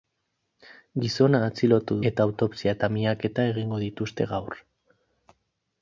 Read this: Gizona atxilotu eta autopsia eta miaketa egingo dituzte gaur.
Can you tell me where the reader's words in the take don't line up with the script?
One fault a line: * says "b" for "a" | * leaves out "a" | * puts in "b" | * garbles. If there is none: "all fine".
all fine